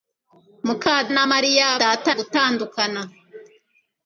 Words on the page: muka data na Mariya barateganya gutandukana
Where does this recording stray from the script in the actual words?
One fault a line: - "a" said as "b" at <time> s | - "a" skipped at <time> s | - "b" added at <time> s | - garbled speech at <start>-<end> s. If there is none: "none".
- "data" skipped at 0.9 s
- "barateganya" said as "data" at 1.8 s